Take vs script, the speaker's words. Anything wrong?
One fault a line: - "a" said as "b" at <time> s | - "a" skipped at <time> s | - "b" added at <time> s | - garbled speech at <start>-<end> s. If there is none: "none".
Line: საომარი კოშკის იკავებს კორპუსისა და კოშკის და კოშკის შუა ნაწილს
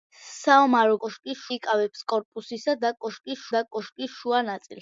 none